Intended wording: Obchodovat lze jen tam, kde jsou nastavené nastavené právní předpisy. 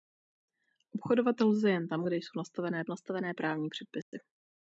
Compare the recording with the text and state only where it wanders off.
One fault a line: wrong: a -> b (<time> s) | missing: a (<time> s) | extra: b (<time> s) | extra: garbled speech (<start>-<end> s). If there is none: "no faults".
no faults